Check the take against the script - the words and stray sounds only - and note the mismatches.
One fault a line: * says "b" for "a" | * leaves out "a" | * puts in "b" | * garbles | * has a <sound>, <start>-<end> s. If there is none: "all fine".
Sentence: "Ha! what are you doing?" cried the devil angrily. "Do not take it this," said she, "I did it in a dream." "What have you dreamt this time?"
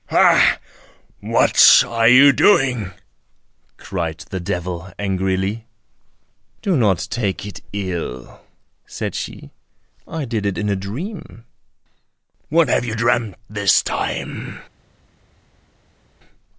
* says "ill" for "this"